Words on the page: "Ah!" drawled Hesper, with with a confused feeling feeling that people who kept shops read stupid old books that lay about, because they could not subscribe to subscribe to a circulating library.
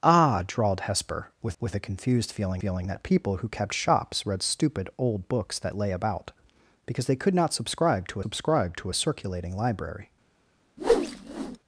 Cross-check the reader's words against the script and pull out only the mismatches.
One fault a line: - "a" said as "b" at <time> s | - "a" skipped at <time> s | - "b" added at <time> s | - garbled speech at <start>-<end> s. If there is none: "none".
none